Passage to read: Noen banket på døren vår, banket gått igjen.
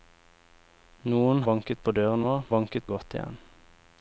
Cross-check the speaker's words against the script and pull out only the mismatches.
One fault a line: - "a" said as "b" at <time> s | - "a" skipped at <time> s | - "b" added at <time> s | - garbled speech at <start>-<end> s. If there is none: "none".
none